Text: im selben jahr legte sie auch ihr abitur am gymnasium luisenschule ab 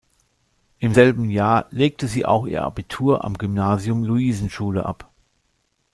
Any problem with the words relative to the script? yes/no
no